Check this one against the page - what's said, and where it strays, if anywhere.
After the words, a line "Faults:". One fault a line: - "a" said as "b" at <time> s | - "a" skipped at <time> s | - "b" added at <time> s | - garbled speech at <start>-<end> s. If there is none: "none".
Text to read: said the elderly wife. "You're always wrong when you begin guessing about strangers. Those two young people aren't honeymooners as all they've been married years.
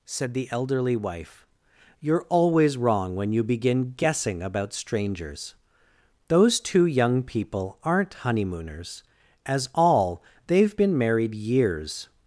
said the elderly wife. "You're always wrong when you begin guessing about strangers. Those two young people aren't honeymooners as all they've been married years.
Faults:
none